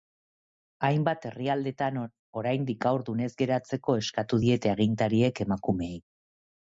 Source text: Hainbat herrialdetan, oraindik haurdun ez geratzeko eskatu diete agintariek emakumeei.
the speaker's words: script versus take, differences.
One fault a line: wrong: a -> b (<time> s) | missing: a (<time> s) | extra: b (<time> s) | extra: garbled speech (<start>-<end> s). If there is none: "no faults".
no faults